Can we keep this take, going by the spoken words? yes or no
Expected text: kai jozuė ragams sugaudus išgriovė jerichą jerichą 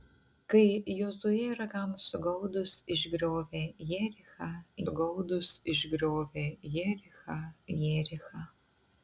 no